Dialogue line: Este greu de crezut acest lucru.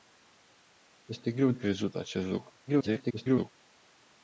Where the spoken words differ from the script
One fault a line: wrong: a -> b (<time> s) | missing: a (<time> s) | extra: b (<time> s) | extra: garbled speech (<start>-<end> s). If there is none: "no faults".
missing: de (1.5 s)
extra: garbled speech (2.7-3.5 s)